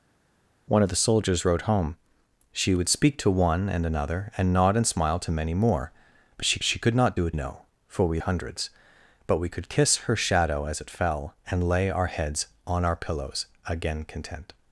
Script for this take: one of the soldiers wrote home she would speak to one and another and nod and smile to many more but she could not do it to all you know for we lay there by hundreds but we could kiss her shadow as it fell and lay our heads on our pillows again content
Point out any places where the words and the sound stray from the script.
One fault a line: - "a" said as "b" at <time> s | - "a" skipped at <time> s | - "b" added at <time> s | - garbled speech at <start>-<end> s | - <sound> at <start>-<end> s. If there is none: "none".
- "she" added at 6.6 s
- "to all you" skipped at 7.3 s
- "lay there by" skipped at 8.2 s